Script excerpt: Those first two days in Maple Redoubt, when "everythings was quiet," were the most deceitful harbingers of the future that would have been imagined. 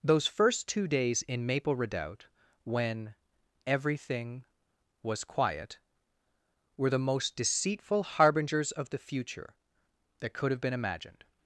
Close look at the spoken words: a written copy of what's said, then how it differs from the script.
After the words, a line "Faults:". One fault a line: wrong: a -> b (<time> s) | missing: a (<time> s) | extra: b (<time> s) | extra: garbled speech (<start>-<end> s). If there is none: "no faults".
Those first two days in Maple Redoubt, when "everything was quiet," were the most deceitful harbingers of the future that could have been imagined.
Faults:
wrong: everythings -> everything (3.7 s)
wrong: would -> could (10.3 s)